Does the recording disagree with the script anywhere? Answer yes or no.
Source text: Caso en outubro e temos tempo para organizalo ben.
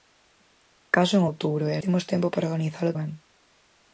no